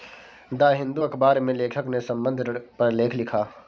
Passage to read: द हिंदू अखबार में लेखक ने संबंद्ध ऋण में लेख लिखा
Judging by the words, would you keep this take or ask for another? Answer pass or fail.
fail